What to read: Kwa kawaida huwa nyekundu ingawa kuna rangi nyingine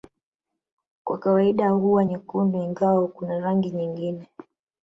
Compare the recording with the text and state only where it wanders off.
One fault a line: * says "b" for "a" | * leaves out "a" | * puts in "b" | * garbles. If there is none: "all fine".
all fine